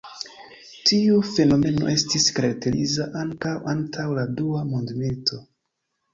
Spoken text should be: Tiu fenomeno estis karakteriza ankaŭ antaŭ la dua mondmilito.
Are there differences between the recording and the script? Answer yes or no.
no